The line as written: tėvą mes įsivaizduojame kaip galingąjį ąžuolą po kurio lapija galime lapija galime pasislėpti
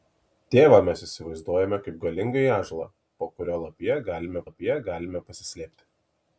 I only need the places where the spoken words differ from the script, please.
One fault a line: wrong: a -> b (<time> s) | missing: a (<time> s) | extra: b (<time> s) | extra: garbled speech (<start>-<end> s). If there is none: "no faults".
no faults